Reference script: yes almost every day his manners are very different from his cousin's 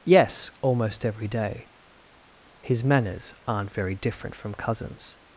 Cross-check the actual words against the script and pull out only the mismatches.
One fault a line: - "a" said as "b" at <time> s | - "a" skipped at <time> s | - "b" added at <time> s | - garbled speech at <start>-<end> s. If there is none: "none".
- "are" said as "aren't" at 3.5 s
- "his" skipped at 4.5 s